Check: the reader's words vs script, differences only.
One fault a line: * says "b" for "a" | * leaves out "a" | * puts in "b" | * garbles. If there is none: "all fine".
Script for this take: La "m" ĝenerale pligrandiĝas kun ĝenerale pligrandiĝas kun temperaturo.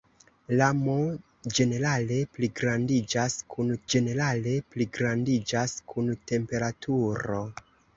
all fine